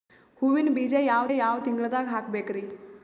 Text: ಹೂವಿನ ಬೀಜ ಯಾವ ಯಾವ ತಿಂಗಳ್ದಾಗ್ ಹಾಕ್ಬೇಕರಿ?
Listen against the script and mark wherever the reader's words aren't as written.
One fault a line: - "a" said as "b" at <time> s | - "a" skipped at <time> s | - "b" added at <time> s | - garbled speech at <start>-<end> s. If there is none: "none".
none